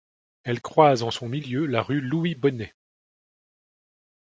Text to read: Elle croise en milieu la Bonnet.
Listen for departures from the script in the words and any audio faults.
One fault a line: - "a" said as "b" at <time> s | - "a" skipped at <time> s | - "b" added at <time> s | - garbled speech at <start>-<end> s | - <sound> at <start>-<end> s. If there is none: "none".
- "son" added at 1.1 s
- "rue Louis" added at 1.8 s